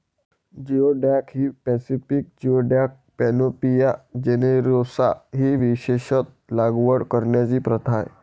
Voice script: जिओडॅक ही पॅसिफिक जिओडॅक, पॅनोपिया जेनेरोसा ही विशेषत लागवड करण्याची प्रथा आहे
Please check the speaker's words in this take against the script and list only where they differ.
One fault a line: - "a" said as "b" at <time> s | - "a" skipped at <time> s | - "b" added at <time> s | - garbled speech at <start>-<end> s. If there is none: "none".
none